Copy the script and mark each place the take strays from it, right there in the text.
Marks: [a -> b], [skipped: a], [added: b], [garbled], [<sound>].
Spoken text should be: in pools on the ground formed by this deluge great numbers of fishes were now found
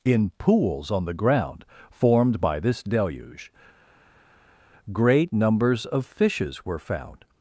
in pools on the ground formed by this deluge great numbers of fishes were [skipped: now] found